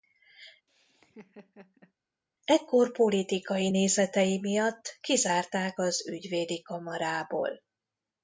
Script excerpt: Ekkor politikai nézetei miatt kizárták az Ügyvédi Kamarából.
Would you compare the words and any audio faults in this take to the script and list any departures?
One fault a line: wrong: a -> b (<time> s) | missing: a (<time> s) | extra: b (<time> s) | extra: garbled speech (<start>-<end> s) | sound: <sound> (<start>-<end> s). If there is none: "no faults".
sound: laugh (0.7-1.9 s)